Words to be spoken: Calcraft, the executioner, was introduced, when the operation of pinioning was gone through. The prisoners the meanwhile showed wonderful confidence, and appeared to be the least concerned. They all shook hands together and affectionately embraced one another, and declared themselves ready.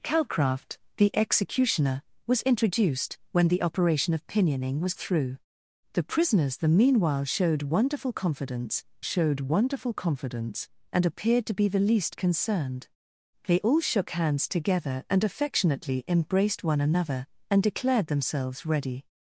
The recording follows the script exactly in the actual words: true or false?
false